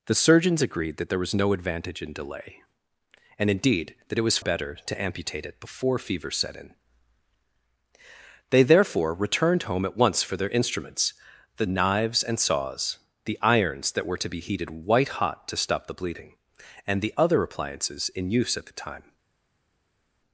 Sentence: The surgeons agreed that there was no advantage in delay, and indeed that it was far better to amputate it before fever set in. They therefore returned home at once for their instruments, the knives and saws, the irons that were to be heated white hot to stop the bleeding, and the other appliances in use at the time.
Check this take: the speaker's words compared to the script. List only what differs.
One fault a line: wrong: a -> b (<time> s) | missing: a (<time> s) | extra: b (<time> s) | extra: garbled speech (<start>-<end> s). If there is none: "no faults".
missing: far (4.4 s)